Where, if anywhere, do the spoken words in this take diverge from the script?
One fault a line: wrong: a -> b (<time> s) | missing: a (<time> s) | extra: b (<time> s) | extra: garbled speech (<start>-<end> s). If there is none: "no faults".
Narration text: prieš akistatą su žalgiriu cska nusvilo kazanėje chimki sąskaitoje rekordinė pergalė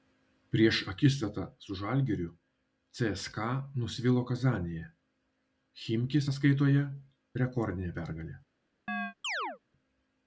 no faults